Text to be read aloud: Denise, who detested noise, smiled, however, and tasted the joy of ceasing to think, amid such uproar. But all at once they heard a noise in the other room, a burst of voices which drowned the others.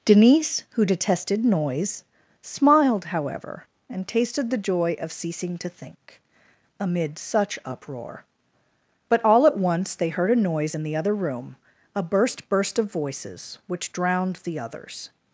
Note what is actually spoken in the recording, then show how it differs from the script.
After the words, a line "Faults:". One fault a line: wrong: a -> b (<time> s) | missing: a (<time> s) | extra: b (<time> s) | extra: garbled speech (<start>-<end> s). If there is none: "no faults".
Denise, who detested noise, smiled, however, and tasted the joy of ceasing to think, amid such uproar. But all at once they heard a noise in the other room, a burst burst of voices which drowned the others.
Faults:
extra: burst (12.5 s)